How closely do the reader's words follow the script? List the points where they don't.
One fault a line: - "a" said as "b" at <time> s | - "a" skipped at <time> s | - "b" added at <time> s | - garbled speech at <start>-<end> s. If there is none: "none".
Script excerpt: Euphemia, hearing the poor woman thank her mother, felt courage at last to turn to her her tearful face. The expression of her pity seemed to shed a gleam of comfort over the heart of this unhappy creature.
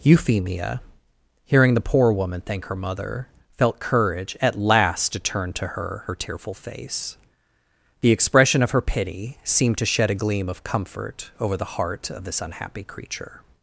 none